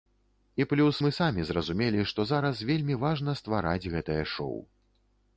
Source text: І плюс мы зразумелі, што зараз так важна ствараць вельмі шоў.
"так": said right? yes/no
no